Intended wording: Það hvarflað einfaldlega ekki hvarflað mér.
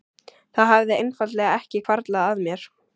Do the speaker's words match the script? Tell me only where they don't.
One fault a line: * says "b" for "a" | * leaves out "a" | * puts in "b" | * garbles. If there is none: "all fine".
* says "hafði" for "hvarflað"
* puts in "að"